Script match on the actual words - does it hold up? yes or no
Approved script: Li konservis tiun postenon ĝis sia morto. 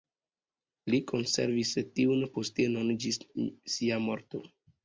yes